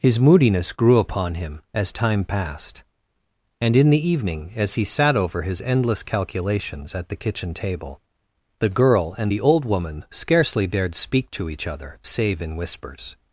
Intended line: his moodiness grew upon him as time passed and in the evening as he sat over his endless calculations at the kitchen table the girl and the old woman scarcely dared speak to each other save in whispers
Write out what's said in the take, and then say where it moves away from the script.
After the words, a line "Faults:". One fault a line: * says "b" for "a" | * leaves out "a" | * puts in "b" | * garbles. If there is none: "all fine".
his moodiness grew upon him as time passed and in the evening as he sat over his endless calculations at the kitchen table the girl and the old woman scarcely dared speak to each other save in whispers
Faults:
all fine